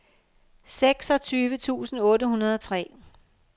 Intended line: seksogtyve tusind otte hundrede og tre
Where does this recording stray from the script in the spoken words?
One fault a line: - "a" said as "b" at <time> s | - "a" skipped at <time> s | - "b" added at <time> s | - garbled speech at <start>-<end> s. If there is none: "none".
none